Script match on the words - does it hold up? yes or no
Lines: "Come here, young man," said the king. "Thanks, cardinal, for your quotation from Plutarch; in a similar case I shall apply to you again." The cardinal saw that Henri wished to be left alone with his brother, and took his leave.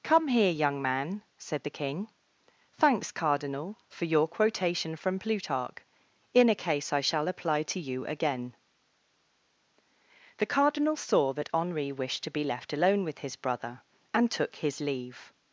no